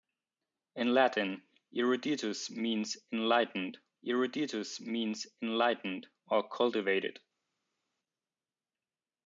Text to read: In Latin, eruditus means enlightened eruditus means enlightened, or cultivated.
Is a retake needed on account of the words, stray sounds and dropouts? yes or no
no